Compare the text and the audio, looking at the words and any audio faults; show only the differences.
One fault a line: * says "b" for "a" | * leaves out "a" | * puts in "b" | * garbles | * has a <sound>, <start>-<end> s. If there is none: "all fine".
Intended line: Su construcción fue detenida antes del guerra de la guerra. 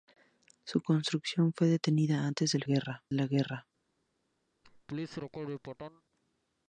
* has a laugh, 4.6-6.0 s